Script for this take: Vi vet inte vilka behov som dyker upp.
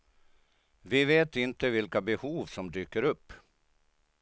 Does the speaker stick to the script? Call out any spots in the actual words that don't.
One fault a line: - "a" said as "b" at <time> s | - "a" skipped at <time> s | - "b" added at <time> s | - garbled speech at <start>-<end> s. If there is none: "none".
none